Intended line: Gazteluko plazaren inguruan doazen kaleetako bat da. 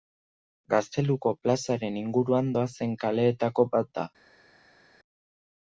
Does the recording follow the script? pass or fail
pass